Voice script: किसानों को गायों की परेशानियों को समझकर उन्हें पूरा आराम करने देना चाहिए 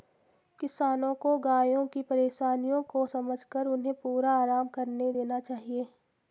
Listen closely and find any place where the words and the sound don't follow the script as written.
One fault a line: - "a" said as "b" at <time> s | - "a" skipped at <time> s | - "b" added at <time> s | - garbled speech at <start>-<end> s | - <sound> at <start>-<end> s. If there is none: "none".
none